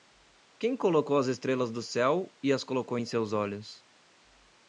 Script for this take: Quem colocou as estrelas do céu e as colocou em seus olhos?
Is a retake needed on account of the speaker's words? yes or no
no